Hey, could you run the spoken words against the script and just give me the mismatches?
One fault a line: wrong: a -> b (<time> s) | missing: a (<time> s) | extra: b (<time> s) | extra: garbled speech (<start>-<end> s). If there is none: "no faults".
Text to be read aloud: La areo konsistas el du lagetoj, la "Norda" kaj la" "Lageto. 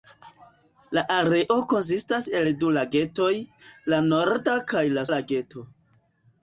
no faults